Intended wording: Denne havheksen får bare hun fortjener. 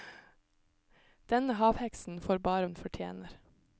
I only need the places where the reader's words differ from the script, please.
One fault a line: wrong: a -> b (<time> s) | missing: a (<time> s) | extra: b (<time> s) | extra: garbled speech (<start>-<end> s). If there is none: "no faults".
no faults